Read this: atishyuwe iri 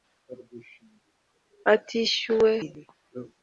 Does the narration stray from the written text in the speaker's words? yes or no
no